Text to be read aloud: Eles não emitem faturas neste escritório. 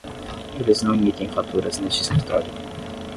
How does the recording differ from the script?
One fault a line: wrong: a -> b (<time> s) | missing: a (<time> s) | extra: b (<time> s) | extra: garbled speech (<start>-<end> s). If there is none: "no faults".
no faults